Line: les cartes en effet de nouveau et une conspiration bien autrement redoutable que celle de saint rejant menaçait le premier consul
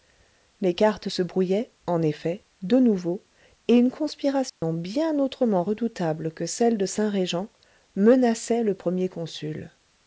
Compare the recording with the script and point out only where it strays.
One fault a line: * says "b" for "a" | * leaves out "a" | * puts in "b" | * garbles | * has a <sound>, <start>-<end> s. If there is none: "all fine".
* puts in "se brouillaient"
* has a dropout, 4.5-4.6 s